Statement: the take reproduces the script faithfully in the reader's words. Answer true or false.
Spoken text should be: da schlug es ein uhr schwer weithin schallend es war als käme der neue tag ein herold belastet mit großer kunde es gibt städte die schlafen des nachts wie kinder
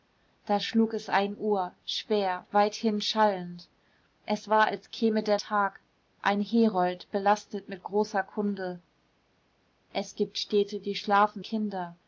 false